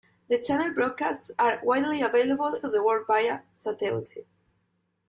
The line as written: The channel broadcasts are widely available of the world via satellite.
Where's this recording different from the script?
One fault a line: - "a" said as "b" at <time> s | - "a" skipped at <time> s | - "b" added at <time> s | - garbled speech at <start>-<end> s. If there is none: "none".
none